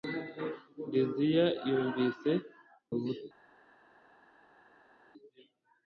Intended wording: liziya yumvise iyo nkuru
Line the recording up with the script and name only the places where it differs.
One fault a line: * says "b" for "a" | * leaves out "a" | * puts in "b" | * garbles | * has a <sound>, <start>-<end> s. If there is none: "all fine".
* leaves out "iyo"